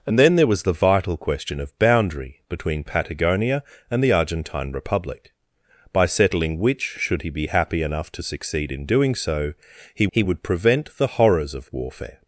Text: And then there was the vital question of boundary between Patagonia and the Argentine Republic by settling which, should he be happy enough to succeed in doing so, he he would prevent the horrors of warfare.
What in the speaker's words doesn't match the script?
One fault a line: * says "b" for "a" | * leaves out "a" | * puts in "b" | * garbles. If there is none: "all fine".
all fine